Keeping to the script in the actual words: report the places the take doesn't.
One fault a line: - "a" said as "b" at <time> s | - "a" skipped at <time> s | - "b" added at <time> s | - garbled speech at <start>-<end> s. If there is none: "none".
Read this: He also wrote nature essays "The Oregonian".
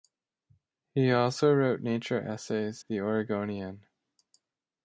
none